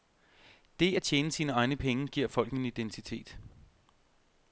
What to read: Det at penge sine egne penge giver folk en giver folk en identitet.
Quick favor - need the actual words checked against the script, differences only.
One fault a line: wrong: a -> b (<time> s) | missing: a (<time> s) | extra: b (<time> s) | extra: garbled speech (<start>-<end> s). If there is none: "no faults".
wrong: penge -> tjene (1.0 s)
missing: giver folk en (2.6 s)